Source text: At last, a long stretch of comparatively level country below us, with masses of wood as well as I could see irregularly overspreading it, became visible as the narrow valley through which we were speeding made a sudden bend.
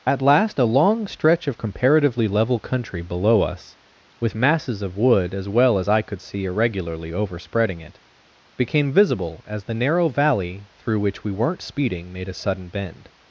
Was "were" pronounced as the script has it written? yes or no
no